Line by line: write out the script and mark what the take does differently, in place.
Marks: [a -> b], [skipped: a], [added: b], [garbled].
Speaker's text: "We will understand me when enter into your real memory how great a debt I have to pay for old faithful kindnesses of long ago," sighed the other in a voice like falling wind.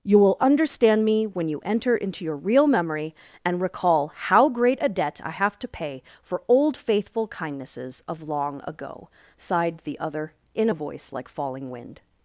["We -> You] will understand me when [added: you] enter into your real memory [added: and recall] how great a debt I have to pay for old faithful kindnesses of long ago," sighed the other in a voice like falling wind.